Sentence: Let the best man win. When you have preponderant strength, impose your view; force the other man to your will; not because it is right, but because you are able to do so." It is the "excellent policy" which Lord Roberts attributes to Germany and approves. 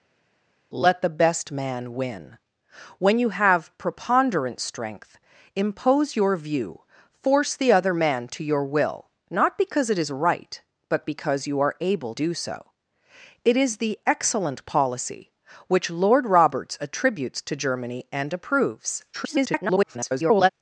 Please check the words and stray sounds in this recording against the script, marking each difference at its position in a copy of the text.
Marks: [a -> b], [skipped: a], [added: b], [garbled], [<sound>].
Let the best man win. When you have preponderant strength, impose your view; force the other man to your will; not because it is right, but because you are able [skipped: to] do so." It is the "excellent policy" which Lord Roberts attributes to Germany and approves. [garbled]